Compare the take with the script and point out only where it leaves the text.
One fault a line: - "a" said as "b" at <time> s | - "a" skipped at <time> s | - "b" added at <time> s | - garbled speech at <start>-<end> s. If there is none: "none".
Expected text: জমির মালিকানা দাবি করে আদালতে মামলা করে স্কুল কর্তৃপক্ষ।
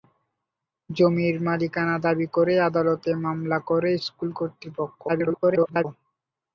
- garbled speech at 5.1-5.9 s